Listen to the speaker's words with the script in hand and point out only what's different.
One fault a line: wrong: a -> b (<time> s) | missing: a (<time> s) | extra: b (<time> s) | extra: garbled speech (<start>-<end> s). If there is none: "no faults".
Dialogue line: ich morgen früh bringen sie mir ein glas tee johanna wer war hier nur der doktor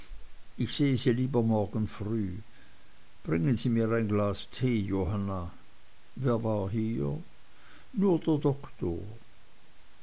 extra: sehe sie lieber (0.7 s)